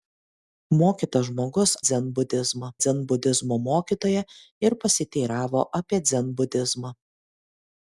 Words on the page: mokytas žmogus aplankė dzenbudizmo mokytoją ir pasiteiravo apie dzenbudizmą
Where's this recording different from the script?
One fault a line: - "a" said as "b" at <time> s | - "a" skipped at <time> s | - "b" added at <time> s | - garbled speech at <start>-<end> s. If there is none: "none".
- "aplankė" said as "dzenbudizmą" at 1.9 s